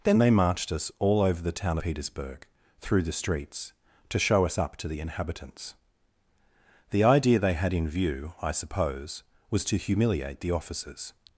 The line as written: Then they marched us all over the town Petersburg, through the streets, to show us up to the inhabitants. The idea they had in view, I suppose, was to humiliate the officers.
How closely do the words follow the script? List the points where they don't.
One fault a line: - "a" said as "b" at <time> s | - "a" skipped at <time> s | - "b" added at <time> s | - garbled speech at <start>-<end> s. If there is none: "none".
none